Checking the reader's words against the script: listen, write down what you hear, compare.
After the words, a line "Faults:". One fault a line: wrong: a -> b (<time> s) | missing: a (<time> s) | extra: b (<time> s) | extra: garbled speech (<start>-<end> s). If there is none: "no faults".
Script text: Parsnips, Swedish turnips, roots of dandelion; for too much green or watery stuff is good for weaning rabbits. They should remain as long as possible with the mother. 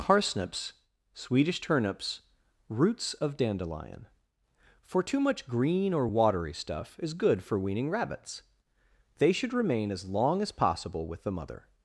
Parsnips, Swedish turnips, roots of dandelion; for too much green or watery stuff is good for weaning rabbits. They should remain as long as possible with the mother.
Faults:
no faults